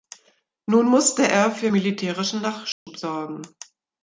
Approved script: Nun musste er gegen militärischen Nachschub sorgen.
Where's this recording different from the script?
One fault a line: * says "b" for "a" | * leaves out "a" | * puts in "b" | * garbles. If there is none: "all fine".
* says "für" for "gegen"